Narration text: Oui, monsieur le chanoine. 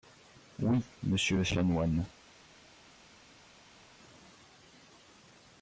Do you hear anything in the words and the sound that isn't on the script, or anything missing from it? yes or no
no